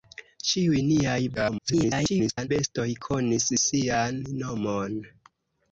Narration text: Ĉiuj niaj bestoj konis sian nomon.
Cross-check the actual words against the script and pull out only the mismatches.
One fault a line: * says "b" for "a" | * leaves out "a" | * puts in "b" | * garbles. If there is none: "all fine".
* garbles